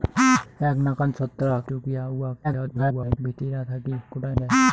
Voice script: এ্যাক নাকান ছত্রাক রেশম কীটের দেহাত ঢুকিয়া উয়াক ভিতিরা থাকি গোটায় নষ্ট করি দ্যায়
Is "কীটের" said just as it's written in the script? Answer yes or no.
no